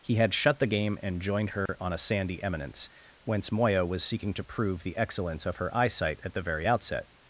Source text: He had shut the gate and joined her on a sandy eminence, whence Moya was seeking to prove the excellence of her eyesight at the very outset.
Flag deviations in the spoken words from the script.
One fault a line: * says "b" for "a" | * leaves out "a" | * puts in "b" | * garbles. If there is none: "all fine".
* says "game" for "gate"